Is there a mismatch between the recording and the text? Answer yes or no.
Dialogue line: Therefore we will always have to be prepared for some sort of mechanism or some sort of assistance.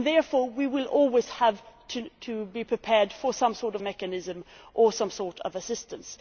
no